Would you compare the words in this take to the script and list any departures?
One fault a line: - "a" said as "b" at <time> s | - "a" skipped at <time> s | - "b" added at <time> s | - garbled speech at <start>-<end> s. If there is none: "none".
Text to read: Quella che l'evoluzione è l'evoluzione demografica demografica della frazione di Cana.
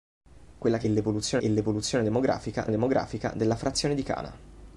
none